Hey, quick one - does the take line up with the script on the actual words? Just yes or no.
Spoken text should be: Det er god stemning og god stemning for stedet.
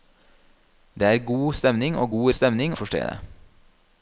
yes